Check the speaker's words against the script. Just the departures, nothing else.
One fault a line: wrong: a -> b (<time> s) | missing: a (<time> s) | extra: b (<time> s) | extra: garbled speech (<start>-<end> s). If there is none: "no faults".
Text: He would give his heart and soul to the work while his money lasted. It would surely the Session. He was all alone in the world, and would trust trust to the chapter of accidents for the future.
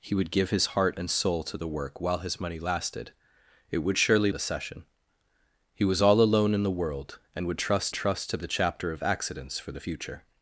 no faults